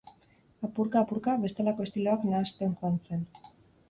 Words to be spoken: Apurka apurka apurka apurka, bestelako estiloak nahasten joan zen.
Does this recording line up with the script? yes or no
no